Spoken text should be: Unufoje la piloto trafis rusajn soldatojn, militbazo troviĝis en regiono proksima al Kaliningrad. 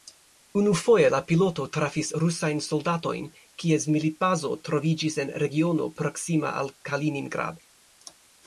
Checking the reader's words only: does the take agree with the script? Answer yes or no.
no